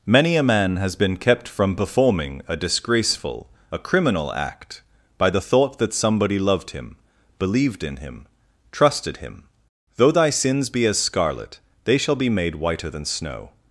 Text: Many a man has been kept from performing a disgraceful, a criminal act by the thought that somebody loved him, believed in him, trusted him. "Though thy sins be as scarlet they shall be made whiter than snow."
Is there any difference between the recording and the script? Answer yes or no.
no